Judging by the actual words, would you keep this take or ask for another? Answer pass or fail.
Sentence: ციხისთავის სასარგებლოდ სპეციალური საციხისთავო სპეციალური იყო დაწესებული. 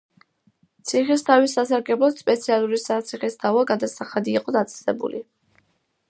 fail